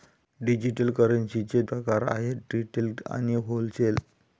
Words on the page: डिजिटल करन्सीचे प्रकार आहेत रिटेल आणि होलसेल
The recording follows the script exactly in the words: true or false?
true